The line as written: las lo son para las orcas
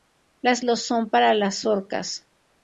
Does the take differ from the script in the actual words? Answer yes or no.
no